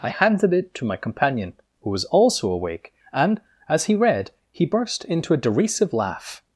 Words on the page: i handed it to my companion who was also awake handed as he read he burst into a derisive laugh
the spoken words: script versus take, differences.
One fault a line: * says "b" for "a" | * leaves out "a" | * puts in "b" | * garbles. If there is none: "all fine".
* says "and" for "handed"